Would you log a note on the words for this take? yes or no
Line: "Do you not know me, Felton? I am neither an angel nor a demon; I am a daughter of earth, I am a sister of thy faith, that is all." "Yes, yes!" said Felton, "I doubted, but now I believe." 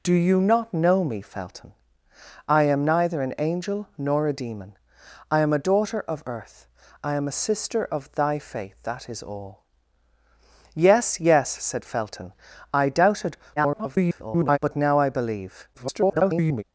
yes